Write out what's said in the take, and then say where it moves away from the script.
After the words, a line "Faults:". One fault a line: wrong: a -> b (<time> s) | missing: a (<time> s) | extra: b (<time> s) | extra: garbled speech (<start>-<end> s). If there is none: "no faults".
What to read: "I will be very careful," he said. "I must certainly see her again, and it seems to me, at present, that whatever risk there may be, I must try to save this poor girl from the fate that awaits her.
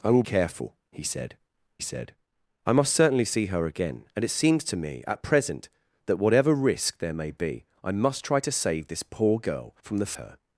"I will careful," he said said. "I must certainly see her again, and it seems to me, at present, that whatever risk there may be, I must try to save this poor girl from the her.
Faults:
missing: be very (0.2 s)
extra: said (1.8 s)
missing: fate that awaits (10.1 s)